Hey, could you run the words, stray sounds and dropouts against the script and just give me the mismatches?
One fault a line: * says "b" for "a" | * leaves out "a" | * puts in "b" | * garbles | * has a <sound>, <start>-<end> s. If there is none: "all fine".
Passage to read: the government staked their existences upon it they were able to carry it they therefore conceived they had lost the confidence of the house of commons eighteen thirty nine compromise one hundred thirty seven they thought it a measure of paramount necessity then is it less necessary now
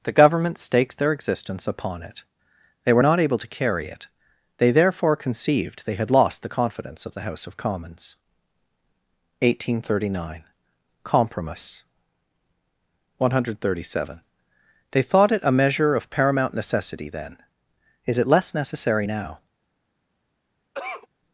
* says "existence" for "existences"
* puts in "not"
* has a cough, 20.7-21.1 s